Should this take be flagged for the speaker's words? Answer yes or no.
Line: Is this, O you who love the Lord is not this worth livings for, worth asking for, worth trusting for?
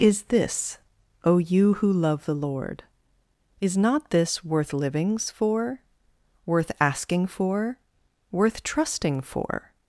no